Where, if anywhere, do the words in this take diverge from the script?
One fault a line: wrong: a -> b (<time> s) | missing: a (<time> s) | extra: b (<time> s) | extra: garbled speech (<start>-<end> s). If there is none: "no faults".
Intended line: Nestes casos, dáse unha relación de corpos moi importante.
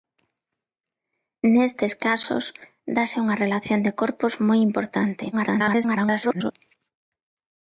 extra: garbled speech (5.3-6.5 s)